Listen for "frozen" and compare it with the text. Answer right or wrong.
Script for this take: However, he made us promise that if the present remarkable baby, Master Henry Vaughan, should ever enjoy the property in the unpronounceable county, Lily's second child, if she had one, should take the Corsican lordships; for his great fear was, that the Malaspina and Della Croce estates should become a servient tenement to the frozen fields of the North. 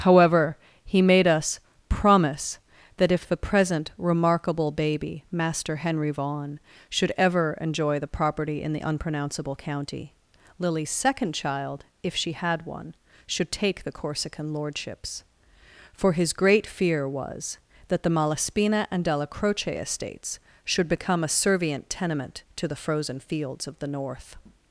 right